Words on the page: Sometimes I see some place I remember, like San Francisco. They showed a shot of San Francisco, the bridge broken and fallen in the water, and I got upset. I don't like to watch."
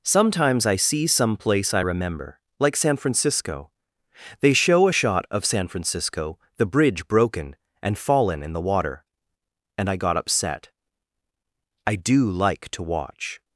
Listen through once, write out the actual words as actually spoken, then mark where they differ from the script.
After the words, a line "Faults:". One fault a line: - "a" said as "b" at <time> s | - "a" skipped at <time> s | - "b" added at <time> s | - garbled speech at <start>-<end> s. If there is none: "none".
Sometimes I see some place I remember, like San Francisco. They show a shot of San Francisco, the bridge broken and fallen in the water, and I got upset. I do like to watch."
Faults:
- "showed" said as "show" at 4.5 s
- "don't" said as "do" at 11.9 s